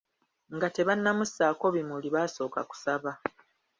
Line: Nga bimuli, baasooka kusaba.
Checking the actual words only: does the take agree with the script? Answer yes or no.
no